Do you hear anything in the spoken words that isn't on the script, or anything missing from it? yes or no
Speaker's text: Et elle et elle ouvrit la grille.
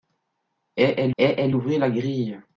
no